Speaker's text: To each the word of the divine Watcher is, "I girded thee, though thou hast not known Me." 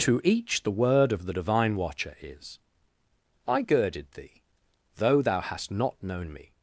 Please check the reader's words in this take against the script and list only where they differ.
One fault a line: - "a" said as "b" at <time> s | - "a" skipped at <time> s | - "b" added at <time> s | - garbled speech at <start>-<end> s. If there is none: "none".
none